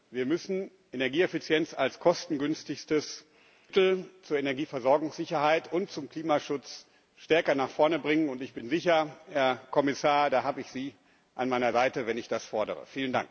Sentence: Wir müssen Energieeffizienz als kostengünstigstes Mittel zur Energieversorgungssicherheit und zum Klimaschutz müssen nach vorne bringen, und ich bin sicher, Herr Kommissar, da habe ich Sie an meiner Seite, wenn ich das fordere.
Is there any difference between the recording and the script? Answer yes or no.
yes